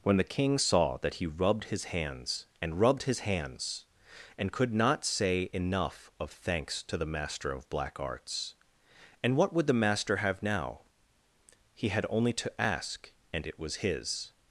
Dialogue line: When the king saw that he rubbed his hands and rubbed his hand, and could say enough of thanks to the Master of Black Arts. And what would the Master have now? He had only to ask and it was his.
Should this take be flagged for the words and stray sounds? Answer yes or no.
yes